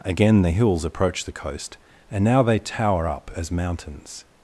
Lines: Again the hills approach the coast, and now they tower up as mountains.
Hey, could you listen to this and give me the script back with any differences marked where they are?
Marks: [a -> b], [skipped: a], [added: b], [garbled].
Again the hills approach the coast, and now they tower up as mountains.